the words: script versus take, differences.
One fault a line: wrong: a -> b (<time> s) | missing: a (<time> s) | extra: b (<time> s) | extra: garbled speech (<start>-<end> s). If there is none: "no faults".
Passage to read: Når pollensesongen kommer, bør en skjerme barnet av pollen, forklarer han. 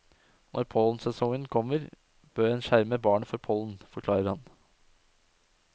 wrong: av -> for (3.3 s)